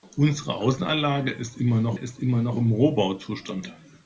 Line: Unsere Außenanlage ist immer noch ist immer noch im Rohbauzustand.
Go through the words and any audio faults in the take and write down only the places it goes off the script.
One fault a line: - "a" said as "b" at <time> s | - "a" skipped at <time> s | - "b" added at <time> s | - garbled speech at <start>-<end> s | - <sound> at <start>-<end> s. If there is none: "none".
none